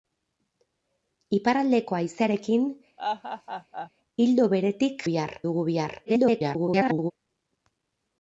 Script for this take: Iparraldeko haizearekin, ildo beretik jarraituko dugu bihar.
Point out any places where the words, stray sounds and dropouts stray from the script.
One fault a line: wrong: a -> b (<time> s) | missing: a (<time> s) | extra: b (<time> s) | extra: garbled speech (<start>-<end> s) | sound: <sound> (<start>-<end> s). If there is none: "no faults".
sound: laugh (3.0-3.9 s)
wrong: jarraituko -> bihar (5.1 s)
extra: garbled speech (6.1-7.1 s)